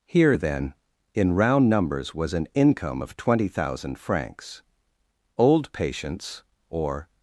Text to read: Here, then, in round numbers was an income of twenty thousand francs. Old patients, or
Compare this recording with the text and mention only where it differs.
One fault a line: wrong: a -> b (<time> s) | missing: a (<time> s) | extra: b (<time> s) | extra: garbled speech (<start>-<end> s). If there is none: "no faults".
no faults